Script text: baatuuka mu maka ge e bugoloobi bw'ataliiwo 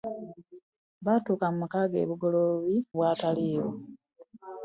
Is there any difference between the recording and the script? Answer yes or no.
no